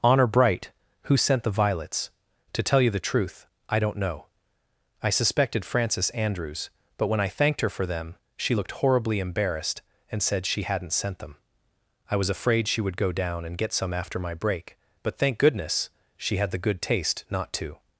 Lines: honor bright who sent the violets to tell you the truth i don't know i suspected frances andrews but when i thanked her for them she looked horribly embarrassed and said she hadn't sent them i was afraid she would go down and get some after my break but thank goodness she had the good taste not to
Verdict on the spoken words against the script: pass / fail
pass